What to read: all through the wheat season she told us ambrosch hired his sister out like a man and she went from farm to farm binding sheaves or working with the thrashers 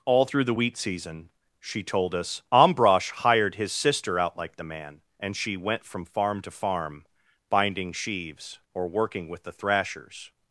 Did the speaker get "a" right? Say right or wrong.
wrong